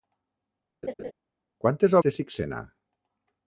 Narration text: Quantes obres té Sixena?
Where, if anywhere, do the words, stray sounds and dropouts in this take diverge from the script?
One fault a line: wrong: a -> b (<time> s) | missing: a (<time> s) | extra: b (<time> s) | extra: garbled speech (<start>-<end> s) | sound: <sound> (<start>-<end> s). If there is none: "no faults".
sound: laugh (0.8-1.1 s)
missing: obres (2.0 s)